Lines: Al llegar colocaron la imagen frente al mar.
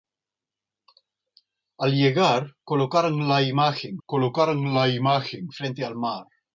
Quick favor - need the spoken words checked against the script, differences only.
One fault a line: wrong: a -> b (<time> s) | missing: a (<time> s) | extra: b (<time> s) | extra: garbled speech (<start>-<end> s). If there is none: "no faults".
extra: colocaron la imagen (4.0 s)